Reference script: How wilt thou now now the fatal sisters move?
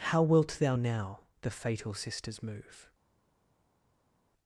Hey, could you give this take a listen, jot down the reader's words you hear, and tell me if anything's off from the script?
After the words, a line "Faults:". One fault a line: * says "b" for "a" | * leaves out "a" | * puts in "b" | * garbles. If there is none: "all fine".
How wilt thou now the fatal sisters move?
Faults:
* leaves out "now"